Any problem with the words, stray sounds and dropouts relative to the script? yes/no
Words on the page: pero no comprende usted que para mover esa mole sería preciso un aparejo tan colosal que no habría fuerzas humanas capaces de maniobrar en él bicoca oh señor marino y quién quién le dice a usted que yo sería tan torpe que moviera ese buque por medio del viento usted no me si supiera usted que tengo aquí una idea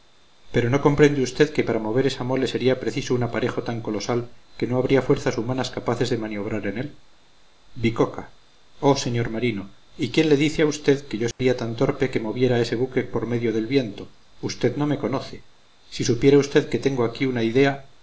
yes